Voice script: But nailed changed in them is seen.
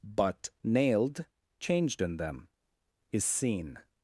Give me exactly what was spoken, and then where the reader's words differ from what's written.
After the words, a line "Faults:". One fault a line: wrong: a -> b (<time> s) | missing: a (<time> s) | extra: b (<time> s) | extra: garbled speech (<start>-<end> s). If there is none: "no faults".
But nailed changed in them is seen.
Faults:
no faults